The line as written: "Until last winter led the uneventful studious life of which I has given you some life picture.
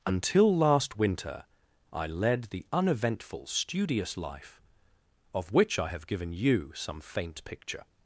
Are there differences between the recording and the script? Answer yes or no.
yes